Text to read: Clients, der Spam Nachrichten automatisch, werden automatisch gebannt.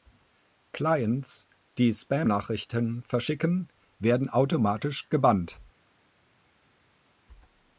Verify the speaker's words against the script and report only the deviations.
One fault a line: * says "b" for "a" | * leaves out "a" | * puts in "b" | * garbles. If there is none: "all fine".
* says "die" for "der"
* says "verschicken" for "automatisch"